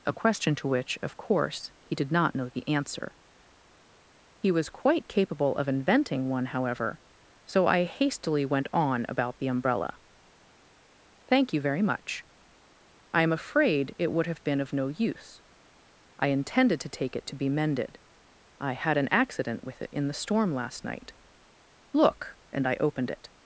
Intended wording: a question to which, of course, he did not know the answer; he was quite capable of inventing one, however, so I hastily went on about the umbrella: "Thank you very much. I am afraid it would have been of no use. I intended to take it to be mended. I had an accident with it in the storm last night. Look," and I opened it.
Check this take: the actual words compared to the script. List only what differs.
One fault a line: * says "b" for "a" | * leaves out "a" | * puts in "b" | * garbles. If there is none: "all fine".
all fine